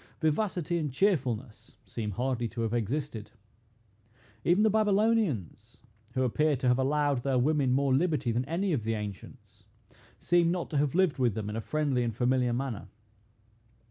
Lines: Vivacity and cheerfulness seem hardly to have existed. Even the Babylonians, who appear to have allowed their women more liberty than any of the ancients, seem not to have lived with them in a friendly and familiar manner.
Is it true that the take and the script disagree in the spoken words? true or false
false